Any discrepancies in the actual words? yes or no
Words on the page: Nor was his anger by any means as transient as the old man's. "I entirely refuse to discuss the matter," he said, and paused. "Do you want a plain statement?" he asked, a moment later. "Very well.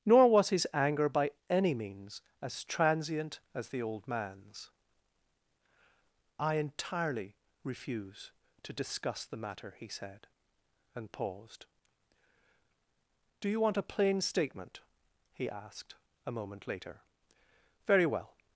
no